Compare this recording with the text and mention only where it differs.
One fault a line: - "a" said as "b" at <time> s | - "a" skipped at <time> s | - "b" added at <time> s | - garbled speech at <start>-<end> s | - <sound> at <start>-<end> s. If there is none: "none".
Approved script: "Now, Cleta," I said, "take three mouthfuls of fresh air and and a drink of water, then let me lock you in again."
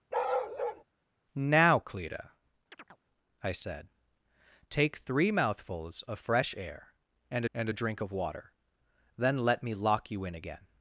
- bark at 0.1-0.8 s
- chirp at 2.7-3.0 s